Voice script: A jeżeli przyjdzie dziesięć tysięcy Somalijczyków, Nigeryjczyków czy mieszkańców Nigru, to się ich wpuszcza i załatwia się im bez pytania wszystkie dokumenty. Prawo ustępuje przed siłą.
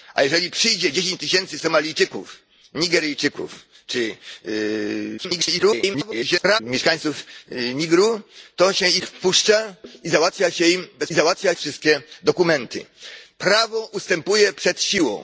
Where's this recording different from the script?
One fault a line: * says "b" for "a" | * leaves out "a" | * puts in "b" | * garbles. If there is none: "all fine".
* garbles
* says "załatwia" for "pytania"